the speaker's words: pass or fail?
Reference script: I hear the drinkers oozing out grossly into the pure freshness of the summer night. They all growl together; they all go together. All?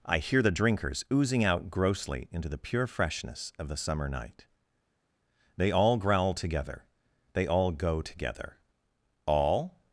pass